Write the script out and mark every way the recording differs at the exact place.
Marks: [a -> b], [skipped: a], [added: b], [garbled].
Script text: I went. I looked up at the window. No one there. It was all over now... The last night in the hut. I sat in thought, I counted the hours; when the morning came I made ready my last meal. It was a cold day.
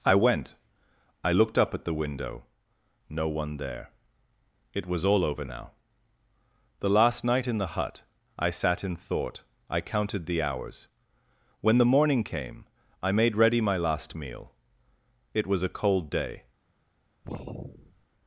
I went. I looked up at the window. No one there. It was all over now... The last night in the hut. I sat in thought, I counted the hours; when the morning came I made ready my last meal. It was a cold day.